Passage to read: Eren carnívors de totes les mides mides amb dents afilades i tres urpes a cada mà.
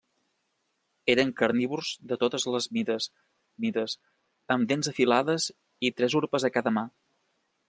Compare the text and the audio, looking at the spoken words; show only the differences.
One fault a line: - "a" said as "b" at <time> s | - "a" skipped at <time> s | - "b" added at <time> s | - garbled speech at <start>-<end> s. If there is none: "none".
none